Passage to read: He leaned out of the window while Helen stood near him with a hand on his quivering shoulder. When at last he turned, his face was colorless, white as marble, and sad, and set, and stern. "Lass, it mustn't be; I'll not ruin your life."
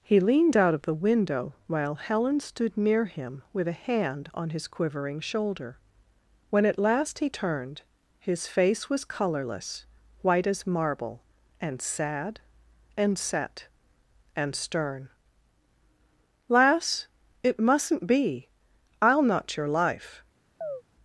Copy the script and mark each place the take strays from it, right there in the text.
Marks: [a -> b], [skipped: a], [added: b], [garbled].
He leaned out of the window while Helen stood near him with a hand on his quivering shoulder. When at last he turned, his face was colorless, white as marble, and sad, and set, and stern. "Lass, it mustn't be; I'll not [skipped: ruin] your life."